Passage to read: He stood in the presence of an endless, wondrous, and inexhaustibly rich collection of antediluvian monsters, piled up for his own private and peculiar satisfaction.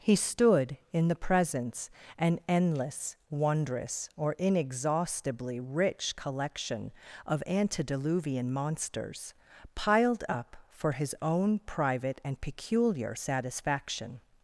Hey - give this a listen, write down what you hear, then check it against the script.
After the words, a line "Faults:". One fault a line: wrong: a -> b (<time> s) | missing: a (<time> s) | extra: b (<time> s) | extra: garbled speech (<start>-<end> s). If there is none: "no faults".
He stood in the presence an endless, wondrous, or inexhaustibly rich collection of antediluvian monsters, piled up for his own private and peculiar satisfaction.
Faults:
missing: of (1.9 s)
wrong: and -> or (4.2 s)